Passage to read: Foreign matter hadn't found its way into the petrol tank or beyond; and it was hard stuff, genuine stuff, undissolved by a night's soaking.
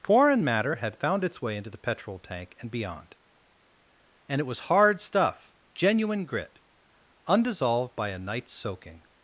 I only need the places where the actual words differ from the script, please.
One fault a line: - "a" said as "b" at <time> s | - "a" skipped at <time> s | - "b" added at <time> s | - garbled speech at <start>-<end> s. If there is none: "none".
- "hadn't" said as "had" at 0.8 s
- "or" said as "and" at 2.6 s
- "stuff" said as "grit" at 6.3 s